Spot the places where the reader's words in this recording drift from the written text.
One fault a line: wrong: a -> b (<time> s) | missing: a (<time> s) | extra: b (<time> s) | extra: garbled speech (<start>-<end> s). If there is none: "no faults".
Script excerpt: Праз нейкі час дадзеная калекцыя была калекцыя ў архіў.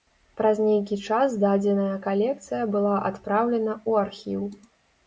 wrong: калекцыя -> адпраўлена (3.1 s)